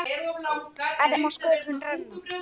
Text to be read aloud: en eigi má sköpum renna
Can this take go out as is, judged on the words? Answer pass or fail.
fail